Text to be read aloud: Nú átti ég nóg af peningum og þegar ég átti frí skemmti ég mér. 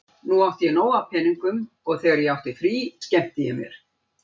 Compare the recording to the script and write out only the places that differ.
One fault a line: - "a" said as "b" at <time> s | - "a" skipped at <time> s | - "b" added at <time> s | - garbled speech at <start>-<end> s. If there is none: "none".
none